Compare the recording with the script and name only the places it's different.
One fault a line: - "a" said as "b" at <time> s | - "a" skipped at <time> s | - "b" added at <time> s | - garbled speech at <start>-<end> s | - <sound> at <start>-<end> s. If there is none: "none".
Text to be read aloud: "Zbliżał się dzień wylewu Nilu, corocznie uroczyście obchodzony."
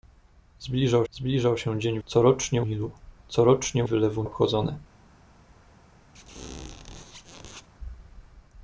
- "zbliżał" added at 1.1 s
- "wylewu" said as "corocznie" at 2.1 s
- "uroczyście" said as "wylewu" at 3.8 s
- squeak at 6.1-7.7 s